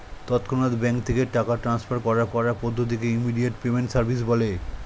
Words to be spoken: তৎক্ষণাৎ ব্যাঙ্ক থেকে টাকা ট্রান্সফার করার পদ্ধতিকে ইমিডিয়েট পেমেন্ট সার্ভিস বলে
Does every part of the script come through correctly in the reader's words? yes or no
no